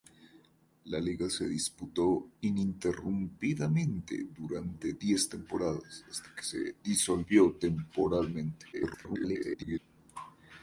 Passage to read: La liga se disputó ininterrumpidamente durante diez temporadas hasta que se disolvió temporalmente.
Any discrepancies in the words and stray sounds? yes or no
yes